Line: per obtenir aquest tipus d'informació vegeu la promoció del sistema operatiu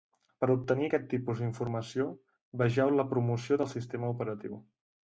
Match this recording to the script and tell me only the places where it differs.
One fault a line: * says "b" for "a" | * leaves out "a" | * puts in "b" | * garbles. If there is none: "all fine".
all fine